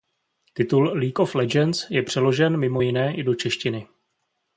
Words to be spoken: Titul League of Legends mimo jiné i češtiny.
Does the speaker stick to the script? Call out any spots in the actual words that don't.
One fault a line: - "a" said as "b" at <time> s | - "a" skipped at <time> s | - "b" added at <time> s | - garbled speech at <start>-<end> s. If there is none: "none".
- "je přeložen" added at 1.9 s
- "do" added at 3.2 s